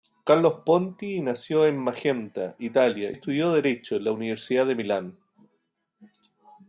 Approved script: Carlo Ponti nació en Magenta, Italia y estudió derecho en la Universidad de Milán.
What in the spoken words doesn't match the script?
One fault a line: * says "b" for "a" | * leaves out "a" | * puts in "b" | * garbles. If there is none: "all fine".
* leaves out "y"